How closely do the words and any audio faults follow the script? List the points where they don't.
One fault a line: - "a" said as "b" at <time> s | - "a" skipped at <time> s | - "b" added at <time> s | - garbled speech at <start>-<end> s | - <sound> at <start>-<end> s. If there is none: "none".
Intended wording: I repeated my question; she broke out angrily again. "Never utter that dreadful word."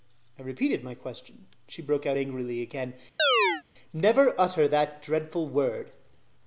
- chirp at 3.2-3.6 s